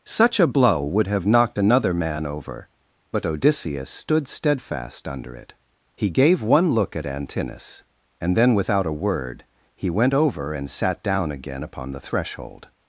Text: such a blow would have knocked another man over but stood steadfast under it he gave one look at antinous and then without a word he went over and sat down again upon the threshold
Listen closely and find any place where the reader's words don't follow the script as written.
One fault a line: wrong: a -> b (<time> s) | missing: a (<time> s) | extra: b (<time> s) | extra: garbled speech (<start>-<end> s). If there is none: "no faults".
extra: odysseus (3.3 s)